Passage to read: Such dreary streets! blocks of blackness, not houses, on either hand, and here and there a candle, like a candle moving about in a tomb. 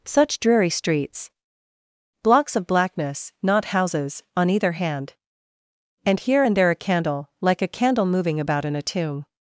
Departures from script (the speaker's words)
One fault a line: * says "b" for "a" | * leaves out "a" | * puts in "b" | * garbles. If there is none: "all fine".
all fine